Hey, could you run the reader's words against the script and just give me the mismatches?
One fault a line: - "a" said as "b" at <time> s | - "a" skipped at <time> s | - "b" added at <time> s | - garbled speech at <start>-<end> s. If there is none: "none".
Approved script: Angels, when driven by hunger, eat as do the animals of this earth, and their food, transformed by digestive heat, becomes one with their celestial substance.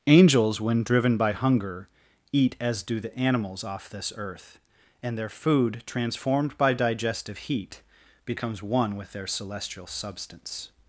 - "of" said as "off" at 3.6 s